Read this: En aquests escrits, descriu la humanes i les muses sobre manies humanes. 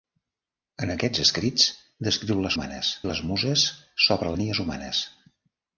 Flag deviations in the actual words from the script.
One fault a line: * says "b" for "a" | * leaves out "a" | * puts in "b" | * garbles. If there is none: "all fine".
all fine